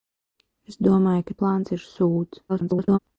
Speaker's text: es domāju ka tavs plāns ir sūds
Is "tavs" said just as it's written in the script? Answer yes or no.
no